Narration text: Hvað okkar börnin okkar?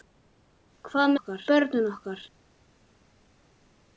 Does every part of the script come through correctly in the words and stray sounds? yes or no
yes